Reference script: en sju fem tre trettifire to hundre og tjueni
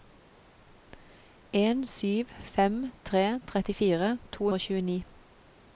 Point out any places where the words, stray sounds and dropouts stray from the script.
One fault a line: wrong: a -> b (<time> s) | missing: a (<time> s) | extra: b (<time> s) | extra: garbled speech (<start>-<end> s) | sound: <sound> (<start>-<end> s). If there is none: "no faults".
missing: hundre (4.5 s)